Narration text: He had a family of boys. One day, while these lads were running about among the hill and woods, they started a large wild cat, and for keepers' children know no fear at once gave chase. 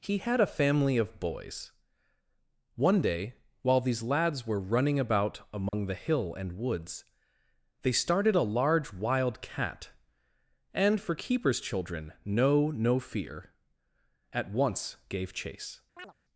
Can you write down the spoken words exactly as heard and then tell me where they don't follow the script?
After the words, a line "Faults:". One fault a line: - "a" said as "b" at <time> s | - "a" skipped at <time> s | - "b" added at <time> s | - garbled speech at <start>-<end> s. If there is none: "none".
He had a family of boys. One day, while these lads were running about among the hill and woods, they started a large wild cat, and for keepers' children know no fear at once gave chase.
Faults:
none